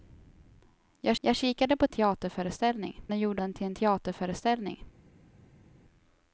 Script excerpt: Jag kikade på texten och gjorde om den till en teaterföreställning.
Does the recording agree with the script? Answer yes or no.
no